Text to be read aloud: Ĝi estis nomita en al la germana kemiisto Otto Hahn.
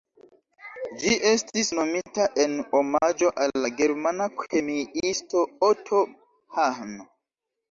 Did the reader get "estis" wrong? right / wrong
right